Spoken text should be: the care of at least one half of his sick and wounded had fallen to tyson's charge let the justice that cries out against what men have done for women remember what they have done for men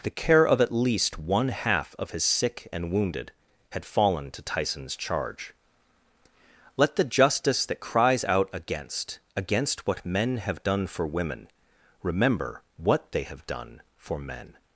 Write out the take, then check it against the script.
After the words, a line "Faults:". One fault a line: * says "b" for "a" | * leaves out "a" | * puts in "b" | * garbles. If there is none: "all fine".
the care of at least one half of his sick and wounded had fallen to tyson's charge let the justice that cries out against against what men have done for women remember what they have done for men
Faults:
* puts in "against"